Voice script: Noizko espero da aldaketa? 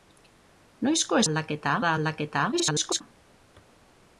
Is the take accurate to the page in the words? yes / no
no